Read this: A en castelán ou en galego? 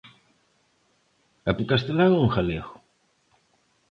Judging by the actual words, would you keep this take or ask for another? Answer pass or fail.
pass